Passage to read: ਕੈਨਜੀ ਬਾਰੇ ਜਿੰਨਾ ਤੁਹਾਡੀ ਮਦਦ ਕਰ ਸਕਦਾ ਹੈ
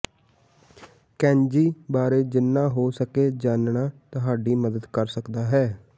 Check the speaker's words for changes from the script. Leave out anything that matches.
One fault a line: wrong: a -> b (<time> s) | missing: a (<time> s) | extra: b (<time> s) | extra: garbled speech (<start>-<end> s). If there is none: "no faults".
extra: ਹੋ ਸਕੇ ਜਾਣਨਾ (2.7 s)